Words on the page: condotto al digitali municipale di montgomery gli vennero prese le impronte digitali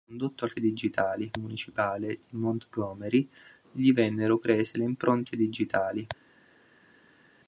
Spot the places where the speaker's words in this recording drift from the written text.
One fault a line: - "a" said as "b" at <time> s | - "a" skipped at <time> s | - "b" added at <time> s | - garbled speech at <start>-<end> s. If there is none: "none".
none